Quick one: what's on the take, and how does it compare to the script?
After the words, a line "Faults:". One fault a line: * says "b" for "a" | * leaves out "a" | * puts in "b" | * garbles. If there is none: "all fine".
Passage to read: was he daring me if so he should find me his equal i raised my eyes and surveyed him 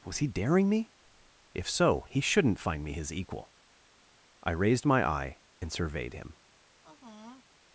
was he daring me if so he shouldn't find me his equal i raised my eye and surveyed him
Faults:
* says "shouldn't" for "should"
* says "eye" for "eyes"